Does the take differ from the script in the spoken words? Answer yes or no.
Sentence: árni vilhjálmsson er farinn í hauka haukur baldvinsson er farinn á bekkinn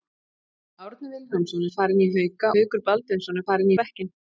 no